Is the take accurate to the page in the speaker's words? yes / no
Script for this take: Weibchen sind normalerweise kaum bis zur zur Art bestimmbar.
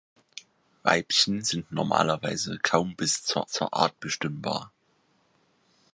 yes